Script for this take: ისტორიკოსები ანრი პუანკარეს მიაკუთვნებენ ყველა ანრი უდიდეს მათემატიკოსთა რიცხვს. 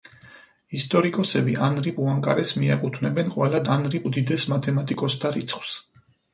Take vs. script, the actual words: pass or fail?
pass